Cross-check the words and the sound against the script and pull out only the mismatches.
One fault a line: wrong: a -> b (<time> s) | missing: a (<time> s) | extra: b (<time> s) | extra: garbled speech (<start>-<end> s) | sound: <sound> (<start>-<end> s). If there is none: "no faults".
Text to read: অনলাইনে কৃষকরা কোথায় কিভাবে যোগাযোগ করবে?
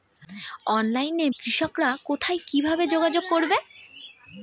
no faults